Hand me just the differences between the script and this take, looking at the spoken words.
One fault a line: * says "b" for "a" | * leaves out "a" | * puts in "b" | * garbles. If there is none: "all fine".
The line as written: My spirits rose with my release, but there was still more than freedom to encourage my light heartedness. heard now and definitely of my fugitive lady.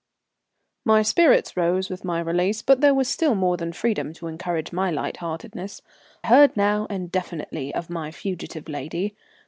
all fine